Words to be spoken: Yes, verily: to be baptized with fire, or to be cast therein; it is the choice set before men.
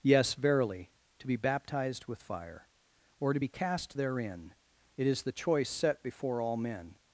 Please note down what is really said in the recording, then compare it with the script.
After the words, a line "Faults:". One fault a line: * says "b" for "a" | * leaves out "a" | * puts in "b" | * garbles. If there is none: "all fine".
Yes, verily: to be baptized with fire, or to be cast therein; it is the choice set before all men.
Faults:
* puts in "all"